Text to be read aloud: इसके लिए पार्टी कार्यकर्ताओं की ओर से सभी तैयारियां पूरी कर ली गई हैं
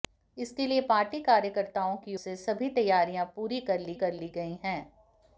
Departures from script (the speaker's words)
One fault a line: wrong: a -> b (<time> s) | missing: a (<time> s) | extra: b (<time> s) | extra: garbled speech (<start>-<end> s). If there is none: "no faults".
missing: ओर (2.1 s)
extra: कर ली (3.9 s)